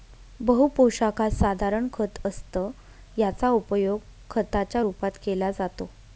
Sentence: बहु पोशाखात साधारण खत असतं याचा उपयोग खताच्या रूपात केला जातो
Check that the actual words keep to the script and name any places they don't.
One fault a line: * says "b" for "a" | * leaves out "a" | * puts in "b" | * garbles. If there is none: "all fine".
all fine